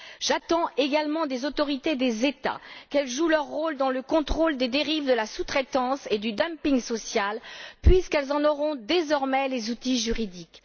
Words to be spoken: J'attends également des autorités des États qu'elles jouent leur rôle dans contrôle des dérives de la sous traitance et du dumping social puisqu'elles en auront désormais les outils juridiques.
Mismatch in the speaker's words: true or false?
true